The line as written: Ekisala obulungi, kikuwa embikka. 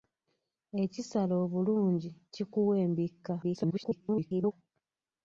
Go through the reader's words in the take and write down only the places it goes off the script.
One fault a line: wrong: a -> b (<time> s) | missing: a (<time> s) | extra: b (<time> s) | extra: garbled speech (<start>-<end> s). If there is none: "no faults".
extra: garbled speech (3.4-4.5 s)